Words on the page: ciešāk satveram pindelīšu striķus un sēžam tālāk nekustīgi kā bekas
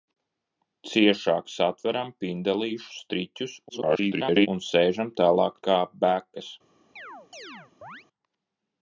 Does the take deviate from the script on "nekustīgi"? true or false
true